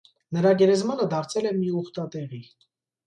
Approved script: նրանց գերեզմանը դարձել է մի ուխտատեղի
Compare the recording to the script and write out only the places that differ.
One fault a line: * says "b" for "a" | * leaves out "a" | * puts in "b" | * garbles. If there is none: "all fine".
* says "նրա" for "նրանց"